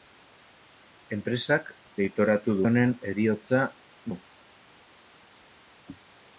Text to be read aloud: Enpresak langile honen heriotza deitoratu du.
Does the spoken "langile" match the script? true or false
false